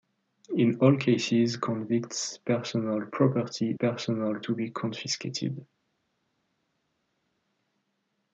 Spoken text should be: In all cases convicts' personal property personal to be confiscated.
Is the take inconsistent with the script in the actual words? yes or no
no